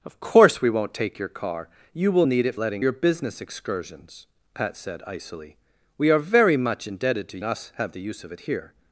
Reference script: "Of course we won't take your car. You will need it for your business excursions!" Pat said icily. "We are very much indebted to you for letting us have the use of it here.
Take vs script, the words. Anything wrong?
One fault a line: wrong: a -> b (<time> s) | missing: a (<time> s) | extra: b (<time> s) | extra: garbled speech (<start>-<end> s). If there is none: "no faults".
wrong: for -> letting (2.5 s)
missing: you for letting (7.4 s)